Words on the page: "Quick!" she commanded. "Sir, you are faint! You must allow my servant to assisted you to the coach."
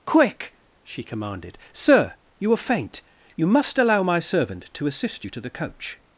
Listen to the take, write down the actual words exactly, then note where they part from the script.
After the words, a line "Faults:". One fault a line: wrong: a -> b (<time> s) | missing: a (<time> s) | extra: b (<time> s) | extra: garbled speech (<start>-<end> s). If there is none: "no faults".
"Quick!" she commanded. "Sir, you are faint! You must allow my servant to assist you to the coach."
Faults:
wrong: assisted -> assist (4.9 s)